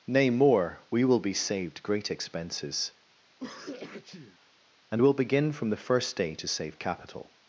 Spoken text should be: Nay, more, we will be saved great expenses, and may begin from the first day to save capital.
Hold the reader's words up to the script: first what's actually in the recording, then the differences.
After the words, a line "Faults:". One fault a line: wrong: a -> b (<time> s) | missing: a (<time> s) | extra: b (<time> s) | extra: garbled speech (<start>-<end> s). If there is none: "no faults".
Nay, more, we will be saved great expenses, and will begin from the first day to save capital.
Faults:
wrong: may -> will (5.0 s)